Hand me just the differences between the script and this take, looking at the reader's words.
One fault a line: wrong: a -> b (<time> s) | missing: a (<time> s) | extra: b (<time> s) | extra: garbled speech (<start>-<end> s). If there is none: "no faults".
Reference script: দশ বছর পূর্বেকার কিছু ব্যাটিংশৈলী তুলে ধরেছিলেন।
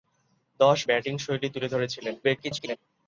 missing: বছর পূর্বেকার কিছু (0.8 s)
extra: garbled speech (2.2-2.8 s)